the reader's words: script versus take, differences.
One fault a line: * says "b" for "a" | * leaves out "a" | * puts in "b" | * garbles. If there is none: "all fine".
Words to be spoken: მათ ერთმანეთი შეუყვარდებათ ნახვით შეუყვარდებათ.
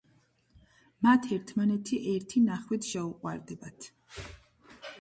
* says "ერთი" for "შეუყვარდებათ"